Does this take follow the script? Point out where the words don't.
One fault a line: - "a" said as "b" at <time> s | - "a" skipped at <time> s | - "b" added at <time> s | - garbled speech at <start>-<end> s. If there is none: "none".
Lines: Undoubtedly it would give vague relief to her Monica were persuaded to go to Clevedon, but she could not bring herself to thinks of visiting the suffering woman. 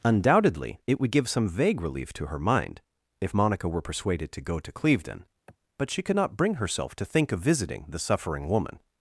- "some" added at 1.3 s
- "mind if" added at 2.4 s
- "thinks" said as "think" at 7.0 s